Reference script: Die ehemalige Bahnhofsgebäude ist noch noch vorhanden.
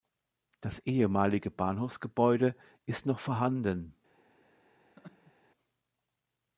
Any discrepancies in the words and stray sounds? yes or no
yes